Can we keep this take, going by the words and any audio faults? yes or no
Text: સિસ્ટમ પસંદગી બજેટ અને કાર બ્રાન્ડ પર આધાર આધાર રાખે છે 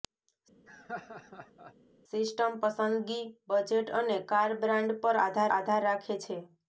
no